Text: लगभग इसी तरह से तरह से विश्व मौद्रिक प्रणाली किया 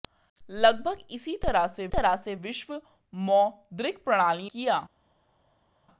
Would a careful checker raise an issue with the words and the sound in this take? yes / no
no